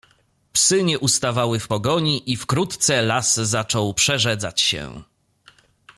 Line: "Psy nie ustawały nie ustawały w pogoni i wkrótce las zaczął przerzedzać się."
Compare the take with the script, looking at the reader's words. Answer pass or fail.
fail